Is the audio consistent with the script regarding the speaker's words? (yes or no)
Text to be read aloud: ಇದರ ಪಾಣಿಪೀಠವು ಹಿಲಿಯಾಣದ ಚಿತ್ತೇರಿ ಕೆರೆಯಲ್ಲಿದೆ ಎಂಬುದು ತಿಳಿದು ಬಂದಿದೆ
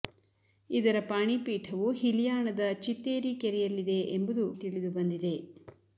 yes